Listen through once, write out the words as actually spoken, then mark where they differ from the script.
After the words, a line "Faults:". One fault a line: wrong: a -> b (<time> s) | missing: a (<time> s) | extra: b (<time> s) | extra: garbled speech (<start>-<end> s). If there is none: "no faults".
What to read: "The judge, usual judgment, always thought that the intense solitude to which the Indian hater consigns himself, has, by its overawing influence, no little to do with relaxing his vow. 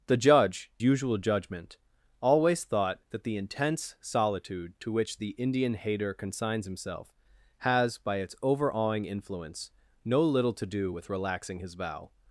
"The judge, usual judgment, always thought that the intense solitude to which the Indian hater consigns himself, has, by its overawing influence, no little to do with relaxing his vow.
Faults:
no faults